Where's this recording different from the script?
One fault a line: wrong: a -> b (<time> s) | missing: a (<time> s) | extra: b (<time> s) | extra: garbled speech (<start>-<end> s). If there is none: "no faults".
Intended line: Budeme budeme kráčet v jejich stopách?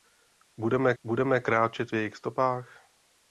no faults